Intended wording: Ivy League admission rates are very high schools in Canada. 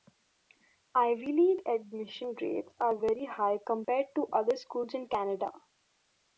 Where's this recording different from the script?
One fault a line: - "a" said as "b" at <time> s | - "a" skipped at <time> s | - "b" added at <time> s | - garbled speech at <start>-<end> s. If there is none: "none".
- "compared to other" added at 3.7 s